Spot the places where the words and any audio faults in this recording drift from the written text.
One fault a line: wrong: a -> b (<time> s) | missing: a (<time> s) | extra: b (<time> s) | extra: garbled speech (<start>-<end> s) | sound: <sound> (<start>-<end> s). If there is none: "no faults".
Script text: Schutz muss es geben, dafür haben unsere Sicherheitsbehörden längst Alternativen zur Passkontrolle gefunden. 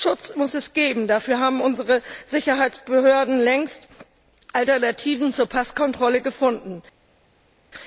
no faults